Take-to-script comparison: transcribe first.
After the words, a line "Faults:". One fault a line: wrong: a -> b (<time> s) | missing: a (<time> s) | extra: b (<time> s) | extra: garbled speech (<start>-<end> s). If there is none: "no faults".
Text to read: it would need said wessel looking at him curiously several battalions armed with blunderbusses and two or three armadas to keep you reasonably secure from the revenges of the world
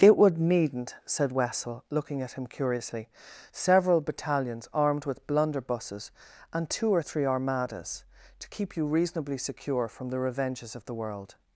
it would needn't said wessel looking at him curiously several battalions armed with blunderbusses and two or three armadas to keep you reasonably secure from the revenges of the world
Faults:
wrong: need -> needn't (0.4 s)